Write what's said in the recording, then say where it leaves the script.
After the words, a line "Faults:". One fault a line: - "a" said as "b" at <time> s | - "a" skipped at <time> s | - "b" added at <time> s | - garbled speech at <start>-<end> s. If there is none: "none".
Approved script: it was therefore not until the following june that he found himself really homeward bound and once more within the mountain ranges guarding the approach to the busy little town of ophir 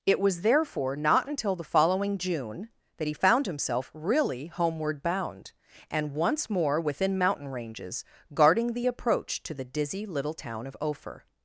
it was therefore not until the following june that he found himself really homeward bound and once more within mountain ranges guarding the approach to the dizzy little town of ophir
Faults:
- "the" skipped at 7.2 s
- "busy" said as "dizzy" at 9.7 s